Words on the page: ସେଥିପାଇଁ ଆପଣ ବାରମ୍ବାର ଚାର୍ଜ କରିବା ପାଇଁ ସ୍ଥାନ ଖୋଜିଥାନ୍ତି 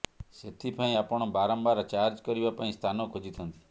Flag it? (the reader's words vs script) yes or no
no